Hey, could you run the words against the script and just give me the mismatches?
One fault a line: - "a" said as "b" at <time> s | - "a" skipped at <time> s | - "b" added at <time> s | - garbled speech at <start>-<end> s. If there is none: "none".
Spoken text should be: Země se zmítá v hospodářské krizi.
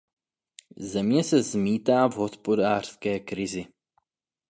none